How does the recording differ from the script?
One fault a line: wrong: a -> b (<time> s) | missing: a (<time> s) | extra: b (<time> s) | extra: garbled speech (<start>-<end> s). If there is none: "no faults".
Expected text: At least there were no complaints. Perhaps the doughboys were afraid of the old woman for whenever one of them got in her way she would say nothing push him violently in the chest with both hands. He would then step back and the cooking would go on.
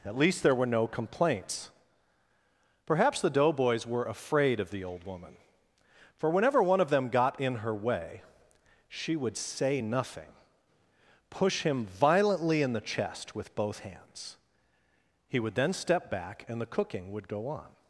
no faults